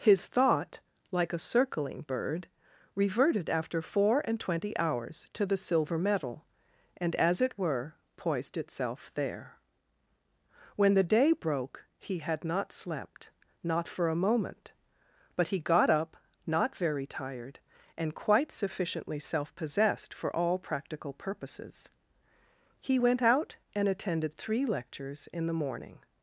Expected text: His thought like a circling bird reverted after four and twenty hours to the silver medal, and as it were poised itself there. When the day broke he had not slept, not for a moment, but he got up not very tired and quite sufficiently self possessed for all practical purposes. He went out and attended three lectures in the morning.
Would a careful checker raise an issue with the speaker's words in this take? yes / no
no